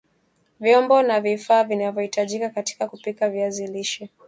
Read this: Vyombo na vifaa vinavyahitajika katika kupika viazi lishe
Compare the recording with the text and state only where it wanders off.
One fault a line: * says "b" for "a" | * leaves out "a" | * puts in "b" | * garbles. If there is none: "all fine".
all fine